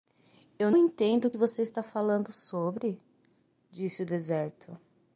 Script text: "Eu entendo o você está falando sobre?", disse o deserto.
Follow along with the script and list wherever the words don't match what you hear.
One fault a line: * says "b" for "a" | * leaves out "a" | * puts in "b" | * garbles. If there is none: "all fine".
all fine